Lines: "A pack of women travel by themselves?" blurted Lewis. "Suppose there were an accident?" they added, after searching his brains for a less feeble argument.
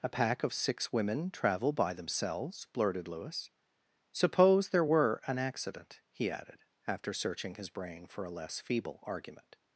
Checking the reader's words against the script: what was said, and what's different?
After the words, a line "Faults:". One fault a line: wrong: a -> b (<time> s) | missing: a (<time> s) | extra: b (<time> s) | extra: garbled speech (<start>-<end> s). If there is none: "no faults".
"A pack of six women travel by themselves?" blurted Lewis. "Suppose there were an accident?" he added, after searching his brain for a less feeble argument.
Faults:
extra: six (0.5 s)
wrong: they -> he (6.1 s)
wrong: brains -> brain (7.7 s)